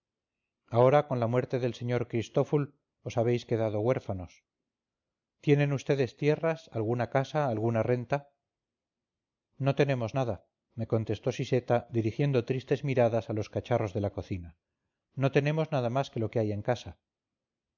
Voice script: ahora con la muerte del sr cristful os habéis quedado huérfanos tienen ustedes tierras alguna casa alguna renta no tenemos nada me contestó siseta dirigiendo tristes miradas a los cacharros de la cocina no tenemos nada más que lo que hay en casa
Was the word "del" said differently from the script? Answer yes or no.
no